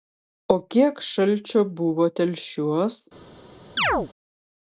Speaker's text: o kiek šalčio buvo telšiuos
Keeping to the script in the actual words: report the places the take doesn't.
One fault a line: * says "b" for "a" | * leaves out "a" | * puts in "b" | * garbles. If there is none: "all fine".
all fine